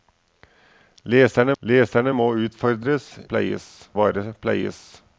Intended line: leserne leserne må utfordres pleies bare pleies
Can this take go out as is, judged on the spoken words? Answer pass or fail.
pass